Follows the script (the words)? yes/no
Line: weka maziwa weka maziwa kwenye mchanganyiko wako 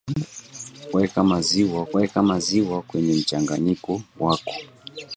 yes